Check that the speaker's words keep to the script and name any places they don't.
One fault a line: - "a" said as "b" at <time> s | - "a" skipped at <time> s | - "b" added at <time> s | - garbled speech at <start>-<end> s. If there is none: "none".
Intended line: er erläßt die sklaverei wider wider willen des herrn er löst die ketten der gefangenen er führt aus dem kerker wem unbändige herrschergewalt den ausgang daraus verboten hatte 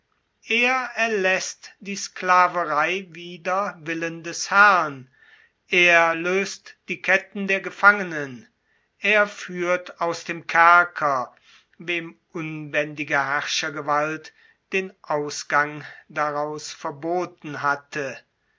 - "wider" skipped at 3.8 s